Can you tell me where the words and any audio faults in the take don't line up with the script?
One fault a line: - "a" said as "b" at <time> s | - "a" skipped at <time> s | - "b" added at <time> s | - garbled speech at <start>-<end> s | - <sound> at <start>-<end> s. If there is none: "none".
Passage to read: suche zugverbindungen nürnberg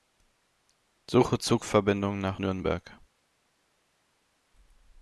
- "nach" added at 2.2 s